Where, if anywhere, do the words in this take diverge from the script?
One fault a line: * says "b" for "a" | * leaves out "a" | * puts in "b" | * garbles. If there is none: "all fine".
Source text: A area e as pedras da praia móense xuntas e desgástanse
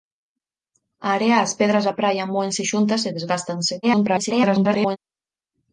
* garbles